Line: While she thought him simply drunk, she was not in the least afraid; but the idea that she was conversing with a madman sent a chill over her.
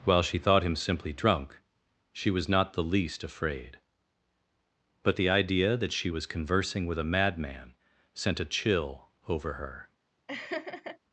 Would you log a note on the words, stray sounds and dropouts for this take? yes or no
yes